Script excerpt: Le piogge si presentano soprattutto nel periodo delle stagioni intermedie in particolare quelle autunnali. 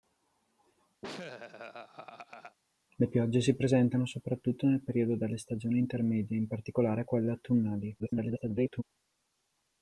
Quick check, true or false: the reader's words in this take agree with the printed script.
false